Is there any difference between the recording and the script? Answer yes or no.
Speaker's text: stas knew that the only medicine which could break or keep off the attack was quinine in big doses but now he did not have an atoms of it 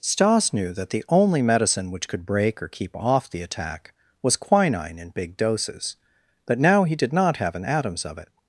no